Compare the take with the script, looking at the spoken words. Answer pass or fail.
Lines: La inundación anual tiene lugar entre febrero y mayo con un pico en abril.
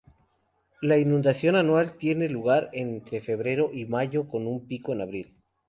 pass